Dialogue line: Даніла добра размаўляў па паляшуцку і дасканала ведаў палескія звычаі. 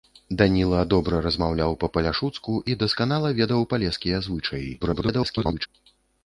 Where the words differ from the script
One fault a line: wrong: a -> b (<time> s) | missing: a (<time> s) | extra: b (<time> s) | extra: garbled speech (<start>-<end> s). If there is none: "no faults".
extra: garbled speech (4.8-5.7 s)